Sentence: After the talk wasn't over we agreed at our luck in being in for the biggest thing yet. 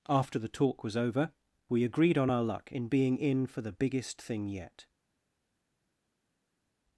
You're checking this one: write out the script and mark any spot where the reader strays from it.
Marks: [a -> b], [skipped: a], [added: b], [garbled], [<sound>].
After the talk [wasn't -> was] over we agreed [at -> on] our luck in being in for the biggest thing yet.